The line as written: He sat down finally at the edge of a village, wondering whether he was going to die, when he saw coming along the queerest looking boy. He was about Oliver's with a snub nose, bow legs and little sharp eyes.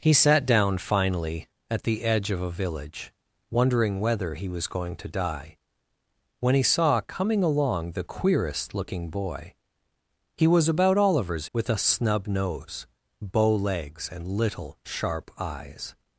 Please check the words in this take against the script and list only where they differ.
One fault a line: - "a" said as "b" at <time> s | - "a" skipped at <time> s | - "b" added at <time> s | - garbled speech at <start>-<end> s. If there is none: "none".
none